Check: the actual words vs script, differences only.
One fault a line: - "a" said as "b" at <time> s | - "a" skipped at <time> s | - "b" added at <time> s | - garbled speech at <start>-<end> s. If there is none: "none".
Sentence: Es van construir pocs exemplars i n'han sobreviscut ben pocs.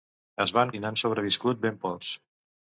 - "construir pocs exemplars" skipped at 0.7 s